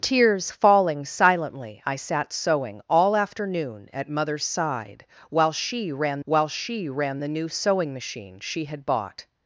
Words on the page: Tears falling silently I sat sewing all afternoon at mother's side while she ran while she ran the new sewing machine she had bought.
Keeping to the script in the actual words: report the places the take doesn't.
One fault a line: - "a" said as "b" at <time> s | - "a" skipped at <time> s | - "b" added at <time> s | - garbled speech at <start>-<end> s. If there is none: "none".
none